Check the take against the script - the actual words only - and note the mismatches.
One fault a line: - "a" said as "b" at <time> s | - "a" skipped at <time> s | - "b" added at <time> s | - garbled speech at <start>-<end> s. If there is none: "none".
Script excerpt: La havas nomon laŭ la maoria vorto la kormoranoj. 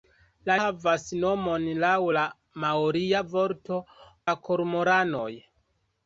none